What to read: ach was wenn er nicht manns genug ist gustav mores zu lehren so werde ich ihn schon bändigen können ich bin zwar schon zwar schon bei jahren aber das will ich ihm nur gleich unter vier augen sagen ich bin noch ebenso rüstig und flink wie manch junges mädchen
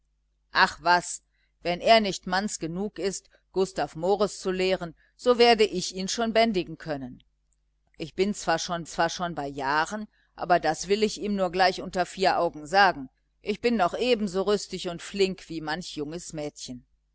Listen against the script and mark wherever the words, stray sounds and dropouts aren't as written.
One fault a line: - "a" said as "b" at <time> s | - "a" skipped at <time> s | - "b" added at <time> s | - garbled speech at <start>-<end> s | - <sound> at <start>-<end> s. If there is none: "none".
none